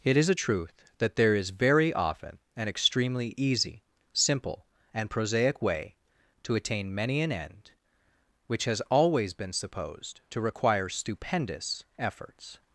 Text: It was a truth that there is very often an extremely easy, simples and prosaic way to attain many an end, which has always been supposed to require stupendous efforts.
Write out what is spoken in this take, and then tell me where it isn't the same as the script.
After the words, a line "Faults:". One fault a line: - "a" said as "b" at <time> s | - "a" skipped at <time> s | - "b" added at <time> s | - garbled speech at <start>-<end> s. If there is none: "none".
It is a truth that there is very often an extremely easy, simple and prosaic way to attain many an end, which has always been supposed to require stupendous efforts.
Faults:
- "was" said as "is" at 0.2 s
- "simples" said as "simple" at 4.1 s